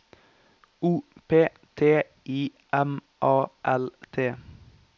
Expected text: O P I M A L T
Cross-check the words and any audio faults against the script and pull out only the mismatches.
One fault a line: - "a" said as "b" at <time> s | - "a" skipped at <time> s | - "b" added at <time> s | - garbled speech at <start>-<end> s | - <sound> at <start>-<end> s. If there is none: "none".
- "T" added at 1.8 s